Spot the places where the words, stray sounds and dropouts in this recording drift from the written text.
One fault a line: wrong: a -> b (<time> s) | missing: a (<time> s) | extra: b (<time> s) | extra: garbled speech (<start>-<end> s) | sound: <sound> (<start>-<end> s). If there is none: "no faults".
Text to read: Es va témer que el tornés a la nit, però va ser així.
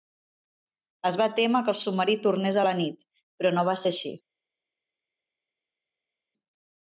extra: submarí (1.8 s)
extra: no (3.6 s)